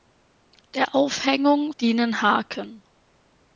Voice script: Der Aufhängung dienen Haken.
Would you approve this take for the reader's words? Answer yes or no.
yes